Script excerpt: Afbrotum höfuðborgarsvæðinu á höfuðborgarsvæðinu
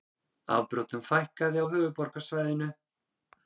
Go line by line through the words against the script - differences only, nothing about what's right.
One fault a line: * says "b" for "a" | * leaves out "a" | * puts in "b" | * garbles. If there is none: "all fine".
* says "fækkaði" for "höfuðborgarsvæðinu"